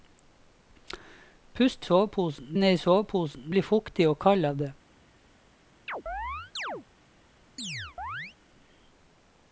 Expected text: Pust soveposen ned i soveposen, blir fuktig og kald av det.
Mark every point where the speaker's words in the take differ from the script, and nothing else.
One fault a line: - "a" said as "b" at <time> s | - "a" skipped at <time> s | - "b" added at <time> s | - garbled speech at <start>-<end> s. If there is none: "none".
none